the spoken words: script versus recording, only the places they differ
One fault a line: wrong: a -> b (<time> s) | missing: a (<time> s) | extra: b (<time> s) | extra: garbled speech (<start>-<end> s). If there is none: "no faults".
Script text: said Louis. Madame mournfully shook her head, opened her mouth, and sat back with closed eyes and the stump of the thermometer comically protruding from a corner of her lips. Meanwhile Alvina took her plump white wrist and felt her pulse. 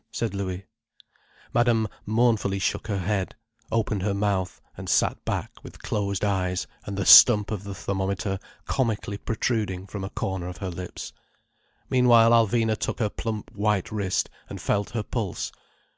no faults